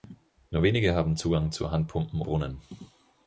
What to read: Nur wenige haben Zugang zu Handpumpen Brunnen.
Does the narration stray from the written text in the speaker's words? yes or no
no